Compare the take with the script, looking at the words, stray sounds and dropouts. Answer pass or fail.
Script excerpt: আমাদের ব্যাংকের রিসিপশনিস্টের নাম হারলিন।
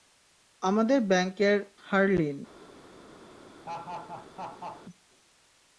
fail